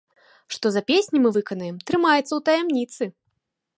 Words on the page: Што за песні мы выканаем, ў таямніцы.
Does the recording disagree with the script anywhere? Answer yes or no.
yes